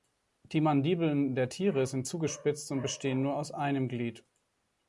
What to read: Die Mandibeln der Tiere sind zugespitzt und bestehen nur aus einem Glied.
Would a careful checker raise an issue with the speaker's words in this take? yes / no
no